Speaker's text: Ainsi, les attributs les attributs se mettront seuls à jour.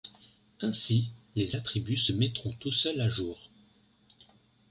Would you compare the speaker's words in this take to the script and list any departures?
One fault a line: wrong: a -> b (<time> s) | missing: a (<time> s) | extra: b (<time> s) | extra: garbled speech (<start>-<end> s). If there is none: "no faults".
missing: les attributs (2.0 s)
extra: tout (2.5 s)